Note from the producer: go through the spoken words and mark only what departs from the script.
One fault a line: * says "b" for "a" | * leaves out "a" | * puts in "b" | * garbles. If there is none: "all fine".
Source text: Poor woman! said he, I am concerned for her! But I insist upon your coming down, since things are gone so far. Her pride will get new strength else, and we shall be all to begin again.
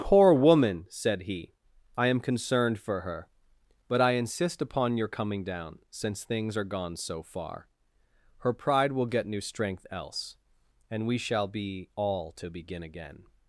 all fine